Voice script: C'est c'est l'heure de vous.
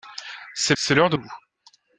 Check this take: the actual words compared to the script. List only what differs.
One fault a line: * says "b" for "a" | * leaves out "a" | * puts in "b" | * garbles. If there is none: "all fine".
all fine